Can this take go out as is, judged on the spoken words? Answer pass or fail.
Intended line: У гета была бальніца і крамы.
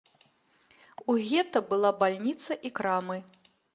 pass